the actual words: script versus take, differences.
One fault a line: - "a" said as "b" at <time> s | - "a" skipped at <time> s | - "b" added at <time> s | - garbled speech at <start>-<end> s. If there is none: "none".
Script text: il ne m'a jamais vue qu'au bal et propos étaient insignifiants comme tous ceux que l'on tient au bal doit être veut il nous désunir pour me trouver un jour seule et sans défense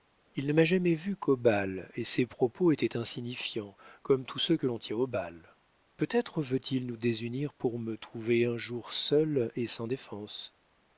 - "ses" added at 2.0 s
- "doit" said as "peut" at 6.0 s